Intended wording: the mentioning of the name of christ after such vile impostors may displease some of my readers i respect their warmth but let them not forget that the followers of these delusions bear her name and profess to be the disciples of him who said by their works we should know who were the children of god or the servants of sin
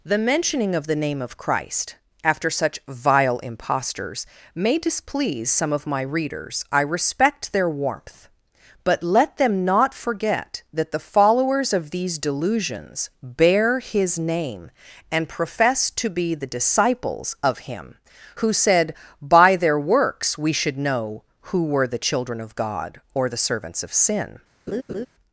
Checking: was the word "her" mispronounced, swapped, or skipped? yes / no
yes